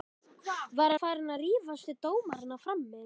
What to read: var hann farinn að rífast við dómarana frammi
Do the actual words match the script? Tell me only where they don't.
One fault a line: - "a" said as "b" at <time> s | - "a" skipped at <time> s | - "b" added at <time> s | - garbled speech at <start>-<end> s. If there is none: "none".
- "hann" skipped at 0.9 s